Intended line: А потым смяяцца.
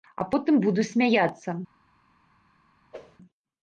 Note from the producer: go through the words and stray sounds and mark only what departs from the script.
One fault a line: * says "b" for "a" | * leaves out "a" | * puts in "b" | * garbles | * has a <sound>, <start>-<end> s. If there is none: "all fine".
* puts in "буду"
* has a whoosh, 2.9-3.2 s